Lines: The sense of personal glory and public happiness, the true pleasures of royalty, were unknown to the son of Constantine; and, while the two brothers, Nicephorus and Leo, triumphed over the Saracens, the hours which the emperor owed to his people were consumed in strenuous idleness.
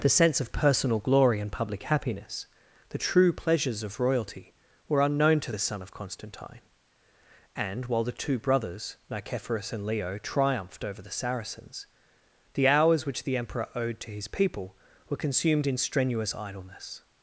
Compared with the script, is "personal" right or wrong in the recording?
right